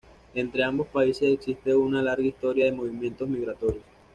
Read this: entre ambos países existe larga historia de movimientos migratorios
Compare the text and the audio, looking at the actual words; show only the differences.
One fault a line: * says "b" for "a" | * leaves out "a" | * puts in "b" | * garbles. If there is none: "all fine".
* puts in "una"